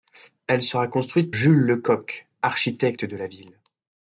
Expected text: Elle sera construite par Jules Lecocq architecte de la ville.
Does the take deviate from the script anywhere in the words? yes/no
yes